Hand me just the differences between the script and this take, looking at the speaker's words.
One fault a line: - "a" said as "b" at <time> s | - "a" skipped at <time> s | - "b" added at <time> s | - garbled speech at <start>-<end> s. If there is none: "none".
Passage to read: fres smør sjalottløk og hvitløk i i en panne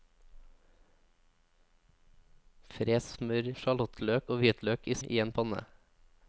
none